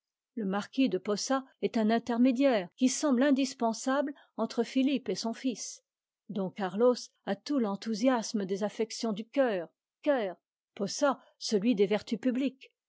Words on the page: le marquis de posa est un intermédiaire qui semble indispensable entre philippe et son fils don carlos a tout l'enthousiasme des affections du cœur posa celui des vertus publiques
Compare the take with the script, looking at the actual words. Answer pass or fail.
fail